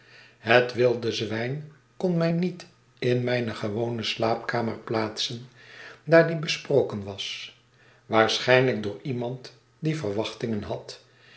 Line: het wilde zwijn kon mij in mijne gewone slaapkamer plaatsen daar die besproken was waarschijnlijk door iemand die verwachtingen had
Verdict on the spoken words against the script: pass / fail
fail